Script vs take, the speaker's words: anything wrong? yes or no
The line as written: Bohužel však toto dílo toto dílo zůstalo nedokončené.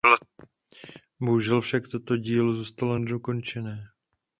yes